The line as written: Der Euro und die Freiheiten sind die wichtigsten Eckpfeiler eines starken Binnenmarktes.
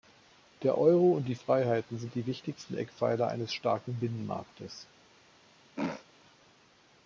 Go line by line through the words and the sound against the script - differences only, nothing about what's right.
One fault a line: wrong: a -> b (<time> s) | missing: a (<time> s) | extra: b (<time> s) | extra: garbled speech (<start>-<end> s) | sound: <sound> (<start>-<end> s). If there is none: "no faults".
sound: throat clearing (5.8-6.1 s)